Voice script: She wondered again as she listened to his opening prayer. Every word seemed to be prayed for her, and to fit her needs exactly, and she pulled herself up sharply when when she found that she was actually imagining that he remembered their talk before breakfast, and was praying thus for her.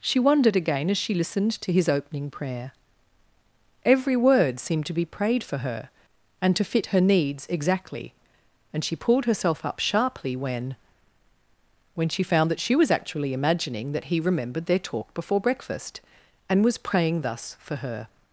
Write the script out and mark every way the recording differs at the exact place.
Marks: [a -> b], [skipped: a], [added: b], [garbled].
She wondered again as she listened to his opening prayer. Every word seemed to be prayed for her, and to fit her needs exactly, and she pulled herself up sharply when when she found that she was actually imagining that he remembered their talk before breakfast, and was praying thus for her.